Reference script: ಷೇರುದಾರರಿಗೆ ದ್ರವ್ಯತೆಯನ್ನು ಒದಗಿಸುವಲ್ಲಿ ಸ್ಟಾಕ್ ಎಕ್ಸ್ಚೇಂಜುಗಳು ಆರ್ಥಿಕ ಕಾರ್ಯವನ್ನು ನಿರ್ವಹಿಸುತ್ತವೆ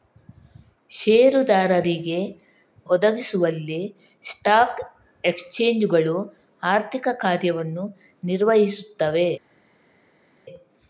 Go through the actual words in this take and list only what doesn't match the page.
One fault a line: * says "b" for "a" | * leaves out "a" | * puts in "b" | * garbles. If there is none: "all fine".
* leaves out "ದ್ರವ್ಯತೆಯನ್ನು"